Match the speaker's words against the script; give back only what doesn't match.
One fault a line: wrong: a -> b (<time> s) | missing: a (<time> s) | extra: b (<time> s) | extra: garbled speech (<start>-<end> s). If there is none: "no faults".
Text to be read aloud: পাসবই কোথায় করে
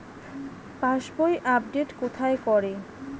extra: আপডেট (1.6 s)